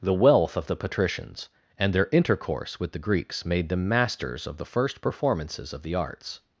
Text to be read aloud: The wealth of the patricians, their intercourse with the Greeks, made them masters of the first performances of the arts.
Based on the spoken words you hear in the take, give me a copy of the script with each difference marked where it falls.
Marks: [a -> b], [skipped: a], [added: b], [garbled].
The wealth of the patricians, [added: and] their intercourse with the Greeks, made them masters of the first performances of the arts.